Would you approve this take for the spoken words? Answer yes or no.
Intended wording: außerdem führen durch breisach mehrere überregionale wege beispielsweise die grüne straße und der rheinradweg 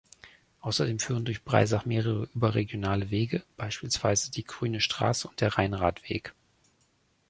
yes